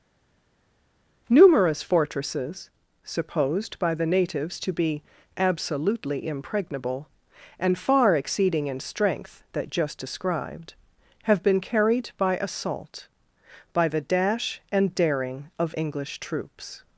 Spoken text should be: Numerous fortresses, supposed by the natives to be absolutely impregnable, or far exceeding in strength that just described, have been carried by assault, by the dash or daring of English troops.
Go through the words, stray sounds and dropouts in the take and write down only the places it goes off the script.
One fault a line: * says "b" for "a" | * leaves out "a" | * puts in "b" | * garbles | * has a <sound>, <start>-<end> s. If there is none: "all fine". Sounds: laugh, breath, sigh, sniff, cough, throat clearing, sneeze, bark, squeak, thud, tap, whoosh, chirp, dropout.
* says "and" for "or"
* says "and" for "or"